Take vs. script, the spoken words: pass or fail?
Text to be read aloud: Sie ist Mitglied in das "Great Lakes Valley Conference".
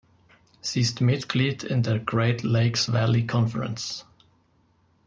fail